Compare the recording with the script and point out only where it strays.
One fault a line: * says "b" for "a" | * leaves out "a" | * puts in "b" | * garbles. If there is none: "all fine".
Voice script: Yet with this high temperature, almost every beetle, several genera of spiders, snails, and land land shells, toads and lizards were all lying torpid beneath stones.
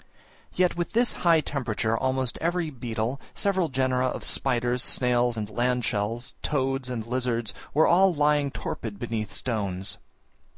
* leaves out "land"